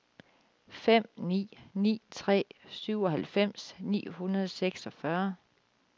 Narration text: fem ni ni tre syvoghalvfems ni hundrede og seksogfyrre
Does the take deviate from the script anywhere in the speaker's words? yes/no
no